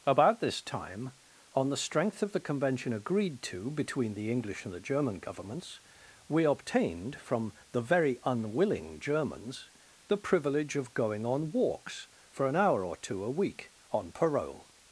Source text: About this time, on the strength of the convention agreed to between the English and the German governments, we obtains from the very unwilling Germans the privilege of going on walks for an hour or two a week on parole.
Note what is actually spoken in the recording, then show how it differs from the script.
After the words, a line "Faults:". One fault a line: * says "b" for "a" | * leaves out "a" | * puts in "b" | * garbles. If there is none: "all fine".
About this time, on the strength of the convention agreed to between the English and the German governments, we obtained from the very unwilling Germans the privilege of going on walks for an hour or two a week on parole.
Faults:
* says "obtained" for "obtains"